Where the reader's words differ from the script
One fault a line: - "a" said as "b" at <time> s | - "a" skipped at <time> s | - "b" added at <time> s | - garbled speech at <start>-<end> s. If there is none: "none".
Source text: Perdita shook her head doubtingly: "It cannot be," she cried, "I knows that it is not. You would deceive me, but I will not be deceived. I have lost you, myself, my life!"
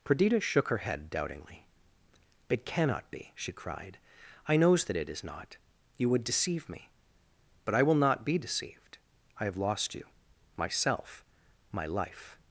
none